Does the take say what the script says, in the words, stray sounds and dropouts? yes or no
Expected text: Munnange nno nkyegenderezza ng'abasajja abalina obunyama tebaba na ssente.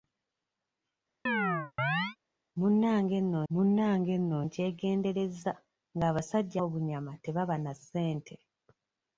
no